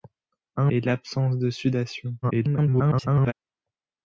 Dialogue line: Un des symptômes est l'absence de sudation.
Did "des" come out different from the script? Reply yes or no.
yes